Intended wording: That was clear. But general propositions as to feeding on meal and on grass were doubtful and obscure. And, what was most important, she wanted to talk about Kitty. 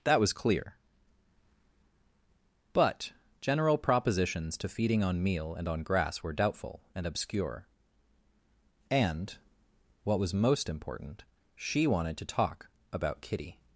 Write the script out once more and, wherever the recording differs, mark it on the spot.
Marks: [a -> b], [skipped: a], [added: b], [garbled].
That was clear. But general propositions [skipped: as] to feeding on meal and on grass were doubtful and obscure. And, what was most important, she wanted to talk about Kitty.